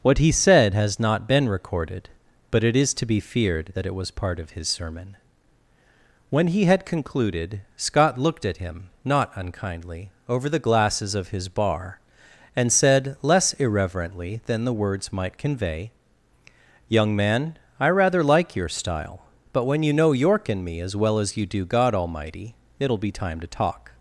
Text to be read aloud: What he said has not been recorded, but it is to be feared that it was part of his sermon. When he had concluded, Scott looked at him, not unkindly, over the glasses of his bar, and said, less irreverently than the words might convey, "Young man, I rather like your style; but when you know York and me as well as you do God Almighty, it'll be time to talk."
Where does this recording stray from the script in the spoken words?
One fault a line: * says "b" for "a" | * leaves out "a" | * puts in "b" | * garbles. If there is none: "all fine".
all fine